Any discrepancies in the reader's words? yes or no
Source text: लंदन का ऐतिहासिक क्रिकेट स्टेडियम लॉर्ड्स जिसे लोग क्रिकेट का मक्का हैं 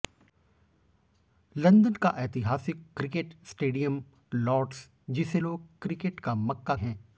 no